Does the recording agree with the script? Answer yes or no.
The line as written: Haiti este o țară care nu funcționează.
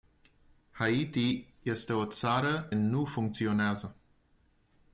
no